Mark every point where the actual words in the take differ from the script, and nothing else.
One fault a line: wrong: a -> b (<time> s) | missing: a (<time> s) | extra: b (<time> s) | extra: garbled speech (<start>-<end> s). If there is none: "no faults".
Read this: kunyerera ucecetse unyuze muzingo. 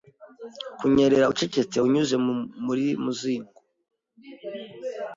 extra: muri (2.7 s)